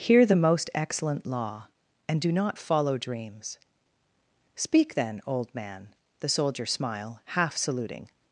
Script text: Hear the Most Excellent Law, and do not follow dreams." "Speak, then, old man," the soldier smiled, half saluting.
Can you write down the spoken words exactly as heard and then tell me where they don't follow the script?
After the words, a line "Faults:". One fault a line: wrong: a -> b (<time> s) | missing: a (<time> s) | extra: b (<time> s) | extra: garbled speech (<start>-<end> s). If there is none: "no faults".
Hear the Most Excellent Law, and do not follow dreams." "Speak, then, old man," the soldier smile, half saluting.
Faults:
wrong: smiled -> smile (6.7 s)